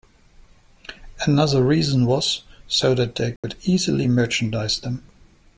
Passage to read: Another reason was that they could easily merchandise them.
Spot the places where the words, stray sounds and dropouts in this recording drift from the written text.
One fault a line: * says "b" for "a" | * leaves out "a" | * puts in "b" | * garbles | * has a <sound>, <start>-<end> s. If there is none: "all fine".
* puts in "so"
* has a dropout, 3.4-3.4 s